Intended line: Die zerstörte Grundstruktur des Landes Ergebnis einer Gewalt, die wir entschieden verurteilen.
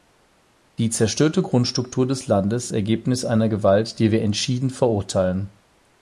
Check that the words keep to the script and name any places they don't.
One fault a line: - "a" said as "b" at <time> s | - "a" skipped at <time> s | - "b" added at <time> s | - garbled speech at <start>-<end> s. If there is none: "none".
none